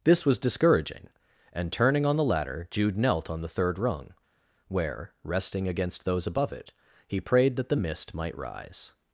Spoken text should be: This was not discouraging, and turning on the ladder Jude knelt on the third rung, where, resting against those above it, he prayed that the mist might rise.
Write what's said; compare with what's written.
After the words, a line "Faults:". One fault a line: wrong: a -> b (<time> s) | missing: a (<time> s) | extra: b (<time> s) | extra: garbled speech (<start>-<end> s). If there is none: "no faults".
This was discouraging, and turning on the ladder Jude knelt on the third rung, where, resting against those above it, he prayed that the mist might rise.
Faults:
missing: not (0.4 s)